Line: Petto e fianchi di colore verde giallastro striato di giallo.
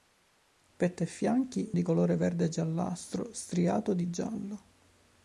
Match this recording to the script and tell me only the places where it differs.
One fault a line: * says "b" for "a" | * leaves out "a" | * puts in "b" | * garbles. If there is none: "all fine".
all fine